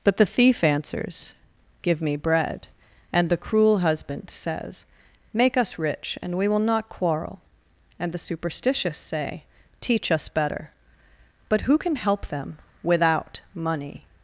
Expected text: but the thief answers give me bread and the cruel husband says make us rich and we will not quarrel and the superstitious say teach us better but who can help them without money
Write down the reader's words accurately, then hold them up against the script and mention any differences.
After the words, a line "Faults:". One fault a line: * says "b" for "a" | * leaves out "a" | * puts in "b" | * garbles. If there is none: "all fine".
but the thief answers give me bread and the cruel husband says make us rich and we will not quarrel and the superstitious say teach us better but who can help them without money
Faults:
all fine